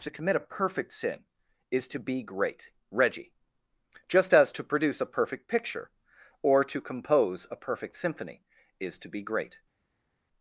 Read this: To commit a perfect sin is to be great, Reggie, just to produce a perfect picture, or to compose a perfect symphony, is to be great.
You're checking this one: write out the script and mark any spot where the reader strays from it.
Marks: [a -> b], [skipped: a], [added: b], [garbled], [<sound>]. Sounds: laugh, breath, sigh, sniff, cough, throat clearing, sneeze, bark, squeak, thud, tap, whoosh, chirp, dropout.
To commit a perfect sin is to be great, Reggie, just [added: as] to produce a perfect picture, or to compose a perfect symphony, is to be great.